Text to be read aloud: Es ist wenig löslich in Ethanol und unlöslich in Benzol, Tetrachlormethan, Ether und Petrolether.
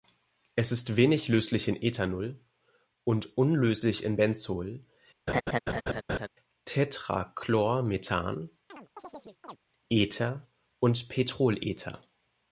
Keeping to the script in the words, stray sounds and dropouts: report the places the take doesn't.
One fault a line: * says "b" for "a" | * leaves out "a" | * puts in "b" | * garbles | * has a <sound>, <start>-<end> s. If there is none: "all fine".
* has a laugh, 5.3-6.3 s
* has a chirp, 8.7-9.6 s